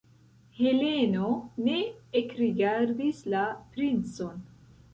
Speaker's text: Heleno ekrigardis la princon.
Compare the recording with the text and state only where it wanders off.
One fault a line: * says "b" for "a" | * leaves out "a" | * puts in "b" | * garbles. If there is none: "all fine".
* puts in "ne"